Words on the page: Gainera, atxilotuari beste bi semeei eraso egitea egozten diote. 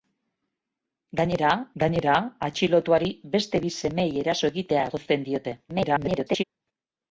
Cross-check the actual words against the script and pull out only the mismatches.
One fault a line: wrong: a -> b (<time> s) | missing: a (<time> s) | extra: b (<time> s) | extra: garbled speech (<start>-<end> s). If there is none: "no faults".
extra: gainera (1.8 s)
extra: garbled speech (5.7-6.4 s)